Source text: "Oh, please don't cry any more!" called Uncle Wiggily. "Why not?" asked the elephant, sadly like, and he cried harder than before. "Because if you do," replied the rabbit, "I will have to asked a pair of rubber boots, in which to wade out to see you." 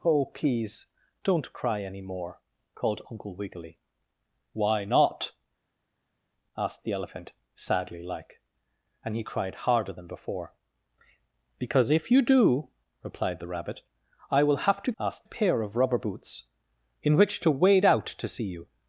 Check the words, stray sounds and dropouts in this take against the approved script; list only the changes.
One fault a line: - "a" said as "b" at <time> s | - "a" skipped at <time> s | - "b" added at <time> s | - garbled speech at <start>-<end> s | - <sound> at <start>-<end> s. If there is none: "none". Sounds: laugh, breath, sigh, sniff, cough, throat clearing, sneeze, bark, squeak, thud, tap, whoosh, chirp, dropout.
none